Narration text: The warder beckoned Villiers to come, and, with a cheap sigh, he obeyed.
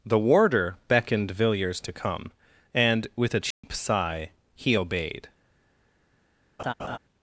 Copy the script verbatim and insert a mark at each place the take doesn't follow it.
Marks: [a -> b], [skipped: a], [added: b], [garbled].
The warder beckoned Villiers to come, and, with a cheap sigh, he obeyed.